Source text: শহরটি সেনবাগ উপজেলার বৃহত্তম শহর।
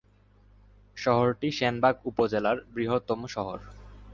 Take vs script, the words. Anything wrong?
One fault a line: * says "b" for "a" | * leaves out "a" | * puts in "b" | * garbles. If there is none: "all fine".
all fine